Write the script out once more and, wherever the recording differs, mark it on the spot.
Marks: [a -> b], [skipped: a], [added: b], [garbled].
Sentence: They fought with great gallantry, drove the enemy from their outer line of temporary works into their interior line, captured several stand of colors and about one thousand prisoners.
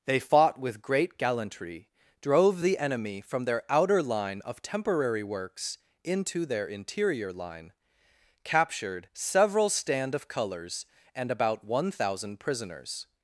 They fought with great gallantry, drove the enemy from their outer line of temporary works into their interior line, captured several stand of colors and about one thousand prisoners.